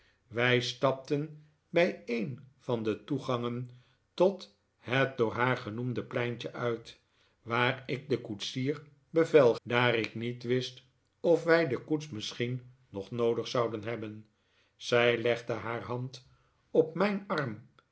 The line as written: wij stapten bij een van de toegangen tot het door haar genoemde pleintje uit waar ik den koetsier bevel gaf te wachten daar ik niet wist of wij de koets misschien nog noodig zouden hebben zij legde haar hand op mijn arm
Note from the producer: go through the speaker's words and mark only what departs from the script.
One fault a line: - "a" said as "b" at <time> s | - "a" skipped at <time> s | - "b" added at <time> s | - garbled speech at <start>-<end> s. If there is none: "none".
- "gaf te wachten" skipped at 9.6 s